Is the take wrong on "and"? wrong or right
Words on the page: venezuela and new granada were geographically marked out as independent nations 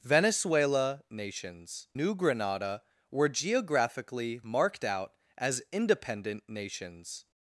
wrong